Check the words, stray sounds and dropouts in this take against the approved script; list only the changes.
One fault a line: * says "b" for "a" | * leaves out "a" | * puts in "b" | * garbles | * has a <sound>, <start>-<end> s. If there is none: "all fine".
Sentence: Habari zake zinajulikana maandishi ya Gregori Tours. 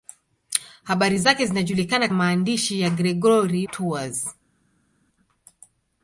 all fine